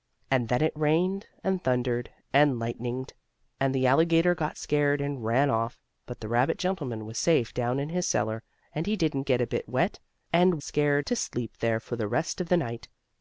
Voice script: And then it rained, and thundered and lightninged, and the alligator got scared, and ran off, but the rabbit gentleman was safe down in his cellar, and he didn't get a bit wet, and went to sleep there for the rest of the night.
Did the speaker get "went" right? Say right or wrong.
wrong